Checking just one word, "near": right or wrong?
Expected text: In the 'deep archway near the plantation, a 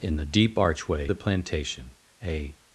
wrong